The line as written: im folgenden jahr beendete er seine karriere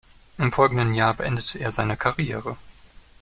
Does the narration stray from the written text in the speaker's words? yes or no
no